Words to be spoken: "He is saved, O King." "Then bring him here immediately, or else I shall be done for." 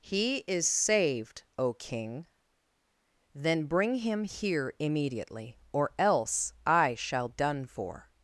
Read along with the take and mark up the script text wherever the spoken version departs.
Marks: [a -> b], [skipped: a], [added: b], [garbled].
"He is saved, O King." "Then bring him here immediately, or else I shall [skipped: be] done for."